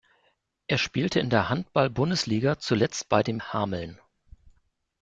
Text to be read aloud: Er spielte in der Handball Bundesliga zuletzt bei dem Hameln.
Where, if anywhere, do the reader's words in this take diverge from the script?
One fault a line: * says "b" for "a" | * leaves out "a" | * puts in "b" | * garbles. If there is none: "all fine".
all fine